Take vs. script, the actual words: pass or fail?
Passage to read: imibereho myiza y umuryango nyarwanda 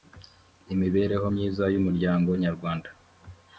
pass